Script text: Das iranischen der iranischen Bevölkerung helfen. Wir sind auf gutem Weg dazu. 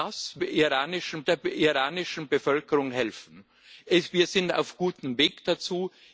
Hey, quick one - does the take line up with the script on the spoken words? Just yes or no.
yes